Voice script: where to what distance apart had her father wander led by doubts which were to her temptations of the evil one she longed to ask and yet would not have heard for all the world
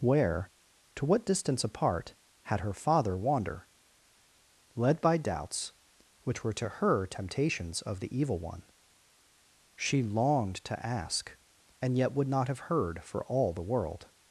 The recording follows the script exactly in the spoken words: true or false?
true